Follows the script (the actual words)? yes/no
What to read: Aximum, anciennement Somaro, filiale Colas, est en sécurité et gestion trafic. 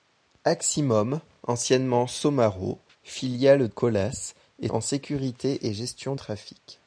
yes